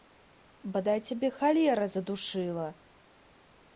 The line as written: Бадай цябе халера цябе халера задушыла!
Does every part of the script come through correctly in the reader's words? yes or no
no